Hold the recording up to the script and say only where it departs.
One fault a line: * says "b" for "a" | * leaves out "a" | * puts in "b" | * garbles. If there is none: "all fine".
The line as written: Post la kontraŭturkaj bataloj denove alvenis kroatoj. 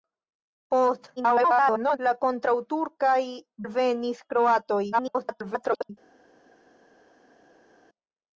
* garbles
* leaves out "bataloj denove"
* garbles